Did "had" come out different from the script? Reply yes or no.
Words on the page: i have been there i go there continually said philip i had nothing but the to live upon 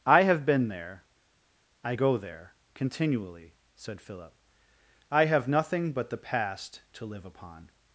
yes